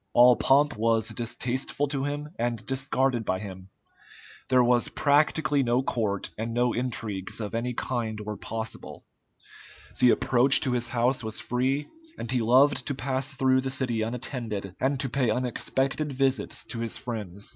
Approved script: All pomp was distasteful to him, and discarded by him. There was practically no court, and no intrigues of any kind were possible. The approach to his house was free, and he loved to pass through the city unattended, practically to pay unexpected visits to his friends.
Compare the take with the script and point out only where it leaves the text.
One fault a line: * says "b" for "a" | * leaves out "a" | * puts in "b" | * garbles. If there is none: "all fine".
* says "and" for "practically"